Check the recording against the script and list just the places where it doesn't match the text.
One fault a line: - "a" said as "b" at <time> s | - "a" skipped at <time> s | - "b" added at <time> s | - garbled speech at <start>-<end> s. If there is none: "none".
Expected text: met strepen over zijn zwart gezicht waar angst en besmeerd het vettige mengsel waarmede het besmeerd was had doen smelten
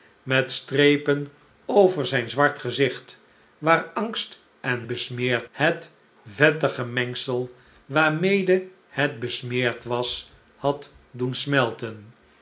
none